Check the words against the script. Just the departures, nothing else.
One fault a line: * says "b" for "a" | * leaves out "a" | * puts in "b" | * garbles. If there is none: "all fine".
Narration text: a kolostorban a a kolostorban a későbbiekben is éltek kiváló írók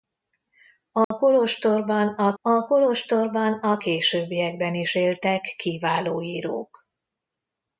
all fine